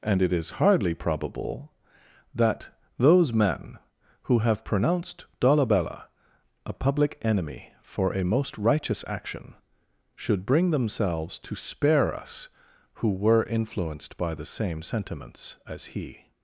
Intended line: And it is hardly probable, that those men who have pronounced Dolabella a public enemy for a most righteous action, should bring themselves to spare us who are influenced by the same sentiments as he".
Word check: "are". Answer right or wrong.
wrong